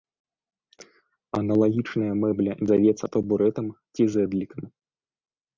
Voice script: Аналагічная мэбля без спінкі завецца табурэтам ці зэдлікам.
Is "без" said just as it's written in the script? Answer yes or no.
no